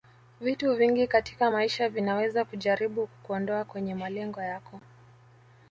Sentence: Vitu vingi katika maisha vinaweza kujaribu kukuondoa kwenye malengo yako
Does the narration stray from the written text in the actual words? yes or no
no